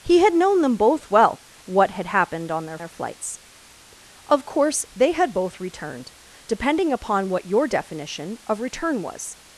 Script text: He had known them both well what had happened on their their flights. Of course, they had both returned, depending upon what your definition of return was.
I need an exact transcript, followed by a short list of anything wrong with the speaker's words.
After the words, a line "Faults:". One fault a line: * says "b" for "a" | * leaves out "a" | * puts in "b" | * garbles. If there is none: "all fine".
He had known them both well what had happened on their their flights. Of course, they had both returned, depending upon what your definition of return was.
Faults:
all fine